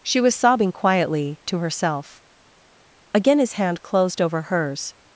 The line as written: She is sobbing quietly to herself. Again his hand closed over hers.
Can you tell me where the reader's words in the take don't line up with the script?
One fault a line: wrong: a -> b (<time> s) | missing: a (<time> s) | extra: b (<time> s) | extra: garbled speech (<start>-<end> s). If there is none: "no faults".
wrong: is -> was (0.2 s)